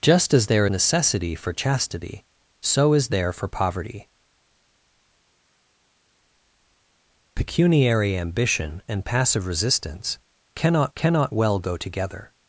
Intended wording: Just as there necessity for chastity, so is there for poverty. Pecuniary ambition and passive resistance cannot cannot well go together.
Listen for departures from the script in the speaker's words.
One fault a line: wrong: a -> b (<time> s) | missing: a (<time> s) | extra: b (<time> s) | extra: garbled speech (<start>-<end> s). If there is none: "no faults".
no faults